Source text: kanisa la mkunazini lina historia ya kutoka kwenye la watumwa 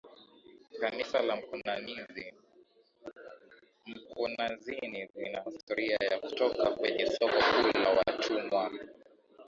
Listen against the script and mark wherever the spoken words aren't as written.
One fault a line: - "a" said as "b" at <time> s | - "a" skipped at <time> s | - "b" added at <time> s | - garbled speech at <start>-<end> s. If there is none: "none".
- "soko kuu" added at 7.1 s